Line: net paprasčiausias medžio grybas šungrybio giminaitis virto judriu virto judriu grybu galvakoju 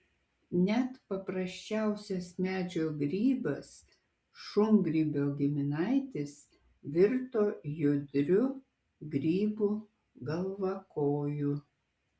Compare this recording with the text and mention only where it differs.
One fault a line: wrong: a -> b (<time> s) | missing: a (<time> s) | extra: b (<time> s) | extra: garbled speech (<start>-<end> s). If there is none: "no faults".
missing: virto judriu (8.4 s)